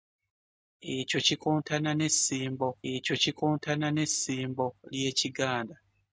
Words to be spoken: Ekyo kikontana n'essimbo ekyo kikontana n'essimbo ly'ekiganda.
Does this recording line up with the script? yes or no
yes